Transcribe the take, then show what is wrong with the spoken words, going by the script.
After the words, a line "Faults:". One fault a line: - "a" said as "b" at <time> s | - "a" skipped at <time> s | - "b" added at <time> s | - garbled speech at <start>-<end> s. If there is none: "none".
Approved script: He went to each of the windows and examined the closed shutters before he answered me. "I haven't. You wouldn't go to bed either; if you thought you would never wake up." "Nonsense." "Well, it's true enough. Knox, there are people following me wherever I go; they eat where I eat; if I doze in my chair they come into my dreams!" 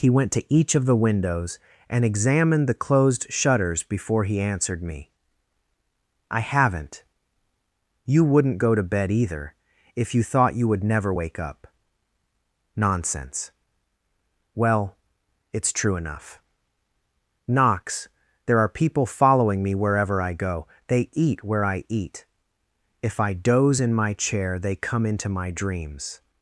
He went to each of the windows and examined the closed shutters before he answered me. "I haven't. You wouldn't go to bed either; if you thought you would never wake up." "Nonsense." "Well, it's true enough. Knox, there are people following me wherever I go; they eat where I eat; if I doze in my chair they come into my dreams!"
Faults:
none